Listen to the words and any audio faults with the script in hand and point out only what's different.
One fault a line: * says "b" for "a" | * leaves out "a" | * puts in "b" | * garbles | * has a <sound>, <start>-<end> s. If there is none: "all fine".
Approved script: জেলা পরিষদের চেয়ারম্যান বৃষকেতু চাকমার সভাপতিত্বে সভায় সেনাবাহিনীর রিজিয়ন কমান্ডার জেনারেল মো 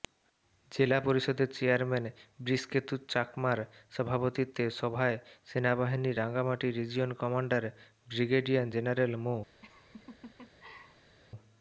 * puts in "রাঙ্গামাটি"
* puts in "ব্রিগেডিয়ার"
* has a laugh, 9.6-11.2 s